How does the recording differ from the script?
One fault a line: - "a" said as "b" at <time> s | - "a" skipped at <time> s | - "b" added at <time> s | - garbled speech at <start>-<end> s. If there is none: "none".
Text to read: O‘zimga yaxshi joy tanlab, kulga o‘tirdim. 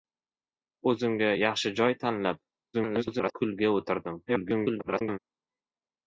- garbled speech at 2.7-3.3 s
- garbled speech at 4.3-5.2 s